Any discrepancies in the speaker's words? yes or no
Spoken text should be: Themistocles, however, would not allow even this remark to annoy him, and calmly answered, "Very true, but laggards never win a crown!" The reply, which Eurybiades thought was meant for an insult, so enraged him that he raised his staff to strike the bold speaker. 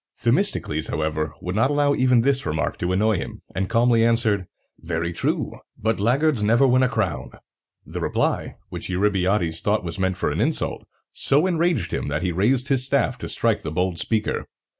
no